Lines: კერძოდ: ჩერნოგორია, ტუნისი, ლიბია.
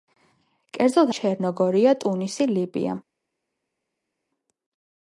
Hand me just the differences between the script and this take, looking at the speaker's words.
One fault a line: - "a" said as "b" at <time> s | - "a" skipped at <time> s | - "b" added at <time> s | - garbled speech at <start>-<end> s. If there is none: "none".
none